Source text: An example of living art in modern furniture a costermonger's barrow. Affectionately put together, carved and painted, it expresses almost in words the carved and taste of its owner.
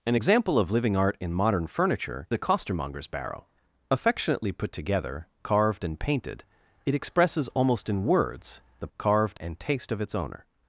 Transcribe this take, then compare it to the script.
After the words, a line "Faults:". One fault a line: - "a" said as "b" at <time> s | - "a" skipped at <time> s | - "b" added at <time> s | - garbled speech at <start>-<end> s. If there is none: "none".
An example of living art in modern furniture a costermonger's barrow. Affectionately put together, carved and painted, it expresses almost in words the carved and taste of its owner.
Faults:
none